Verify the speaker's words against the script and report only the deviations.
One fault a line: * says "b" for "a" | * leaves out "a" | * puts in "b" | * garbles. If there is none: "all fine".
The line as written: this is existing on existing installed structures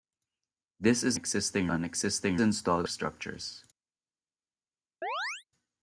all fine